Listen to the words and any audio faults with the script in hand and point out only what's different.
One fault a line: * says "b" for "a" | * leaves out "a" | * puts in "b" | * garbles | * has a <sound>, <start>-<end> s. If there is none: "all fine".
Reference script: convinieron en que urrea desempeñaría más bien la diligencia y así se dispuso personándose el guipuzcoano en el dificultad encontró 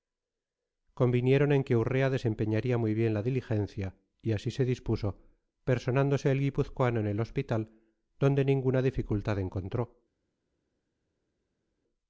* says "muy" for "más"
* puts in "hospital donde ninguna"